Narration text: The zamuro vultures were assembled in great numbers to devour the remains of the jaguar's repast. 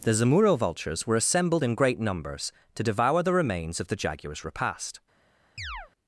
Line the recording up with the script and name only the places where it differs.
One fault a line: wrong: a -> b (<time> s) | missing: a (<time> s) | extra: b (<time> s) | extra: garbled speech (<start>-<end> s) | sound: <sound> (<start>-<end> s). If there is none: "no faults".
sound: chirp (5.6-5.9 s)